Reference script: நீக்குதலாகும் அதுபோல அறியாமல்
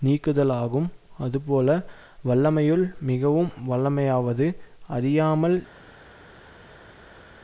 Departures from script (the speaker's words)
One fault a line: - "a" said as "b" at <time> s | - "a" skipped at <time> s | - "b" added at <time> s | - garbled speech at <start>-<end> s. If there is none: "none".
- "வல்லமையுள் மிகவும் வல்லமையாவது" added at 2.2 s